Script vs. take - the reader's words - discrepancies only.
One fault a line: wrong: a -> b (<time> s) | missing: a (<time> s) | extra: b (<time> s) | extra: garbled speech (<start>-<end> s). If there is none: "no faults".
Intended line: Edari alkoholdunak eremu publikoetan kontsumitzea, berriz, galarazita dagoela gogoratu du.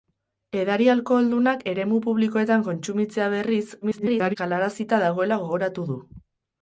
extra: garbled speech (3.8-4.4 s)